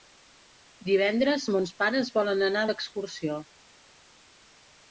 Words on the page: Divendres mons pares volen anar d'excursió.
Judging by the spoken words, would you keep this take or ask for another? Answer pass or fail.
pass